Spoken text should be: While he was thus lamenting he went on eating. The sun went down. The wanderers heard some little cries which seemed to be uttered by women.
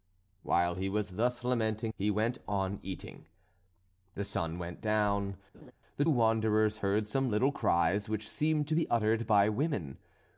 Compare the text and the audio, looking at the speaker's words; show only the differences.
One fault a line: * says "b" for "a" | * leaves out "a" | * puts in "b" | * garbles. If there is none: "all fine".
all fine